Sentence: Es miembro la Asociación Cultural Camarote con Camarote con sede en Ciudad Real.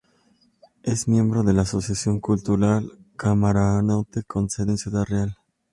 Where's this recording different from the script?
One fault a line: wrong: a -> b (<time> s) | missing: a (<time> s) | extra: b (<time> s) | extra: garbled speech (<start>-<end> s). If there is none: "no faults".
extra: de (1.4 s)
missing: Camarote con (4.5 s)